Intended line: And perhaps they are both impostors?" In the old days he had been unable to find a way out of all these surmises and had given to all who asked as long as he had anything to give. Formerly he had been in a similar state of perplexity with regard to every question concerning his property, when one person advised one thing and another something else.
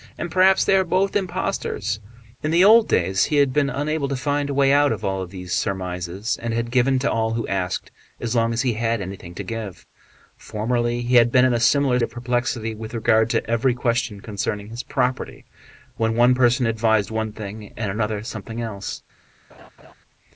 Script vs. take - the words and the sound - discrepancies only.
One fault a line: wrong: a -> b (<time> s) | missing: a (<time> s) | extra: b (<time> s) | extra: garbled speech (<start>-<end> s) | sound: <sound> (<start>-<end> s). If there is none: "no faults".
missing: state (12.0 s)
sound: laugh (19.5-19.9 s)